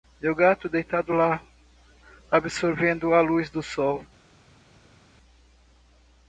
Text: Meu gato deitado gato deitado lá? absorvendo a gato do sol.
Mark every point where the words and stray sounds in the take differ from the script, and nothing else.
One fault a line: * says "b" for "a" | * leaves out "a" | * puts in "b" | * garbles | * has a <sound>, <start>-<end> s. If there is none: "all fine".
* leaves out "gato deitado"
* says "luz" for "gato"